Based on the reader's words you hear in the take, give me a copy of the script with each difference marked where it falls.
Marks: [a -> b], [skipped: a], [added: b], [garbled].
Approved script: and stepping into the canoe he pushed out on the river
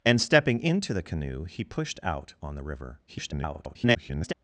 and stepping into the canoe he pushed out on the river [garbled]